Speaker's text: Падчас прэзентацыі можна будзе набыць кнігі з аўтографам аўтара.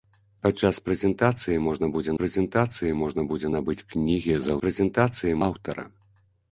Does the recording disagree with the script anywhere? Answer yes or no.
yes